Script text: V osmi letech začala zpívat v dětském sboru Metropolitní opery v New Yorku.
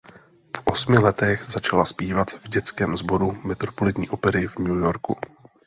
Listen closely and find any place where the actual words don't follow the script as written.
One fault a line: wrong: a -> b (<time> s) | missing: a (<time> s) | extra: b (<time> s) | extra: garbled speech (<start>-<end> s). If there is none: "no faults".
no faults